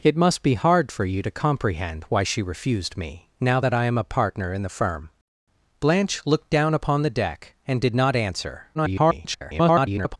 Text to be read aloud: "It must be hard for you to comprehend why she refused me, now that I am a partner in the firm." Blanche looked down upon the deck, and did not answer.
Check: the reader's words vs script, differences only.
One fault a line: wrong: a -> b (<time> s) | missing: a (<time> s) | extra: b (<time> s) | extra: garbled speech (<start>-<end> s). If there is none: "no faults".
extra: garbled speech (8.7-10.2 s)